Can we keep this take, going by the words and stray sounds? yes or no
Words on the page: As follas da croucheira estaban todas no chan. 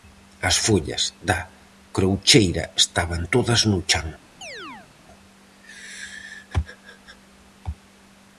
no